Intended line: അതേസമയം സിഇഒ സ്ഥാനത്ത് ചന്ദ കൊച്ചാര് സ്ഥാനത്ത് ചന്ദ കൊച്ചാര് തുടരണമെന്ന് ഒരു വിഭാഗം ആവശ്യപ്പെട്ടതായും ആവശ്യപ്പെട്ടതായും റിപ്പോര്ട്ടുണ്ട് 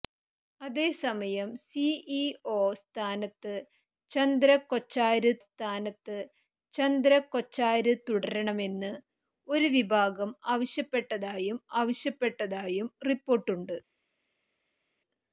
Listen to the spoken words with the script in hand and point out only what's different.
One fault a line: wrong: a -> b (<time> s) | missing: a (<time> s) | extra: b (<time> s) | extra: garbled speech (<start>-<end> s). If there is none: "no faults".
no faults